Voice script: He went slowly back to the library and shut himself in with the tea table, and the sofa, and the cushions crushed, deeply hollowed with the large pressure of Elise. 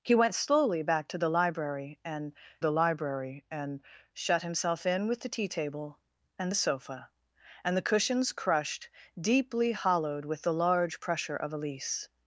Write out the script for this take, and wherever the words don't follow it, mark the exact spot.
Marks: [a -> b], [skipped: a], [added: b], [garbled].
He went slowly back to the library and [added: the library and] shut himself in with the tea table, and the sofa, and the cushions crushed, deeply hollowed with the large pressure of Elise.